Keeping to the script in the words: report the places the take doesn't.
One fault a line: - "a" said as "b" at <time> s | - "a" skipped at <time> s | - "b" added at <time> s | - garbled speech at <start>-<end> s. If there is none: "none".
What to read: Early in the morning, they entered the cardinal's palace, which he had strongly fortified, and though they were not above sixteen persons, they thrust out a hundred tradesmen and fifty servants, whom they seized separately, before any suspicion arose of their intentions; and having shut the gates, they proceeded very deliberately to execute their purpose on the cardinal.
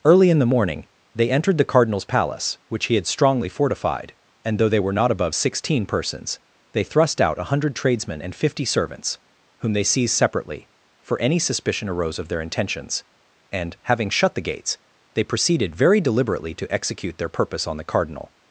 - "before" said as "for" at 11.0 s